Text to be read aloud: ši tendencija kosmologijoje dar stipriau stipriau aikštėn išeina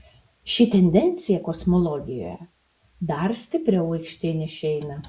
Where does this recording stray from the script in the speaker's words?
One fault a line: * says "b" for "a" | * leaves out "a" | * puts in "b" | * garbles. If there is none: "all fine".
* leaves out "stipriau"